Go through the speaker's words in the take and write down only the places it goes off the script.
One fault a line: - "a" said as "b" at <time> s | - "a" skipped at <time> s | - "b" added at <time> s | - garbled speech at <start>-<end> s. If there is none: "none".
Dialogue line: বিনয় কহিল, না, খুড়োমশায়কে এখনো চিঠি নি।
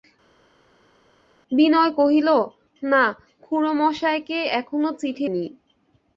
none